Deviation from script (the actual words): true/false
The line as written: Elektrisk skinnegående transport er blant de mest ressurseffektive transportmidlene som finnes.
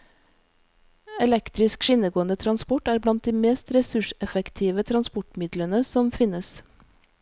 false